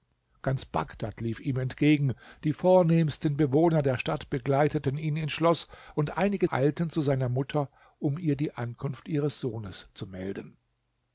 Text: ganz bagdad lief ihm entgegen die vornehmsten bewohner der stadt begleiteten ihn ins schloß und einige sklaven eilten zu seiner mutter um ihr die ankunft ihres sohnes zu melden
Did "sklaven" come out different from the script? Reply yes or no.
yes